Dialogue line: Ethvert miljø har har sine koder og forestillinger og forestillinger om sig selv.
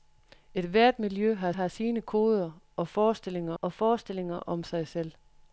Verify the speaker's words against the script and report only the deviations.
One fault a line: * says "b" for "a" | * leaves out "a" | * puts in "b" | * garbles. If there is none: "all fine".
all fine